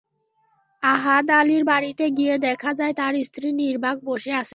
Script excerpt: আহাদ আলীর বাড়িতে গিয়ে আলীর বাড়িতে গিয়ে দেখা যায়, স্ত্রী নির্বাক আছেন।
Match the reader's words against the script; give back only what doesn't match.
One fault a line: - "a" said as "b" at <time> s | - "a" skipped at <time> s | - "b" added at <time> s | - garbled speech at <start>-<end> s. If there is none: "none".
- "আলীর বাড়িতে গিয়ে" skipped at 2.3 s
- "তাঁর" added at 2.9 s
- "বসে" added at 4.0 s